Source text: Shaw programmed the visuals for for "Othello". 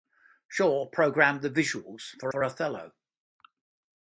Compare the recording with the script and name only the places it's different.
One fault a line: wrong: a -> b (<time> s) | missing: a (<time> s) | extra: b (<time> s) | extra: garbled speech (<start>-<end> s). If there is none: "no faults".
no faults